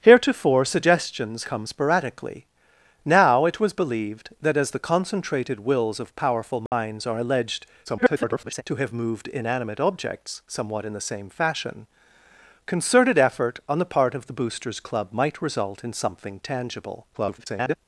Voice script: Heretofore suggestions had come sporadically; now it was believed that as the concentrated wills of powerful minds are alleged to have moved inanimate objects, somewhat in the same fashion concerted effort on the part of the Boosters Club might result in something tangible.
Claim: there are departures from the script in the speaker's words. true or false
true